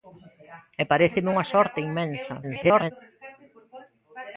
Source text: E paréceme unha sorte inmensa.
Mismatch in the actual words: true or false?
true